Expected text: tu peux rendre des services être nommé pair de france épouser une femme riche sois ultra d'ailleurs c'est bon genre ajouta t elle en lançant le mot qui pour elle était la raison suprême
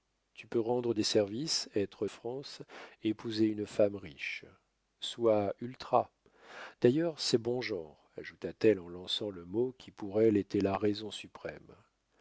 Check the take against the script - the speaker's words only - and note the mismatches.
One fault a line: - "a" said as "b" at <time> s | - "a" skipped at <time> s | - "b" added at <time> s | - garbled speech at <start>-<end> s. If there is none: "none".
- "nommé pair de" skipped at 2.1 s